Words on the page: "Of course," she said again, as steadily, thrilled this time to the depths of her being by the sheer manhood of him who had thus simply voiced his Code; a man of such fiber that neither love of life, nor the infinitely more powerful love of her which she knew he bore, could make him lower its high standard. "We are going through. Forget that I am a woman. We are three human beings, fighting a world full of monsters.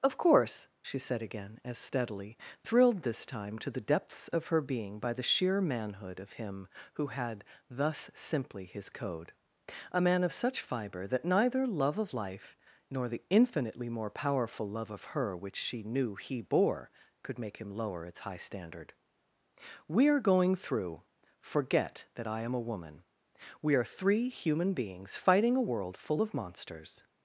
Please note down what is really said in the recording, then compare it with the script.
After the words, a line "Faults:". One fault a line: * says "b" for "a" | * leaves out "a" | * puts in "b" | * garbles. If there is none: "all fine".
"Of course," she said again, as steadily, thrilled this time to the depths of her being by the sheer manhood of him who had thus simply his Code; a man of such fiber that neither love of life, nor the infinitely more powerful love of her which she knew he bore, could make him lower its high standard. "We are going through. Forget that I am a woman. We are three human beings, fighting a world full of monsters.
Faults:
* leaves out "voiced"